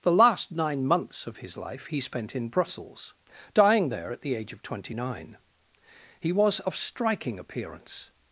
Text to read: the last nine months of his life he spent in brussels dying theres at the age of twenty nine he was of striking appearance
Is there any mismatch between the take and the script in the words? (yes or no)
yes